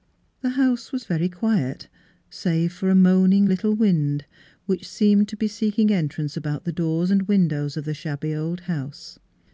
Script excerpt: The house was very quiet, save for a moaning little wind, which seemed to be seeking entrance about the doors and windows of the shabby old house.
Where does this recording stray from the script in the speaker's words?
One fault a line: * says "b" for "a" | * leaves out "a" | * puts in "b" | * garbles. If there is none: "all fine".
all fine